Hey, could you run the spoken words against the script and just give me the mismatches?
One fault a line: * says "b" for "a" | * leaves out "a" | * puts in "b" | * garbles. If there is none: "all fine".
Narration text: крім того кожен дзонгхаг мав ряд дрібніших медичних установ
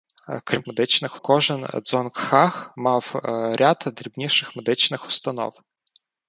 * says "медичних" for "того"